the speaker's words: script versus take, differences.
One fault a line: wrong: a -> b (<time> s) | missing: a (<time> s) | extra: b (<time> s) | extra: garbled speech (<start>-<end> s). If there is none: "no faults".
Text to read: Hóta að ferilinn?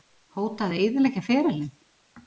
extra: eyðileggja (0.8 s)